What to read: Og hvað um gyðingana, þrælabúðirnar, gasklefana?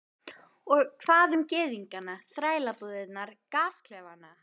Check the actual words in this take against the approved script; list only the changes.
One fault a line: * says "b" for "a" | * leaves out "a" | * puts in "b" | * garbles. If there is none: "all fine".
all fine